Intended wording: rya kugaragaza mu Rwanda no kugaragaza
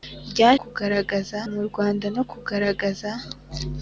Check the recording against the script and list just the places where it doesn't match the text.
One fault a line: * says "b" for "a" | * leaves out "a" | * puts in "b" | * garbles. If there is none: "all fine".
all fine